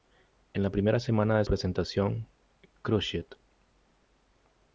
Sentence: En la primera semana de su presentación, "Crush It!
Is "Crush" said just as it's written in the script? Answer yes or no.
yes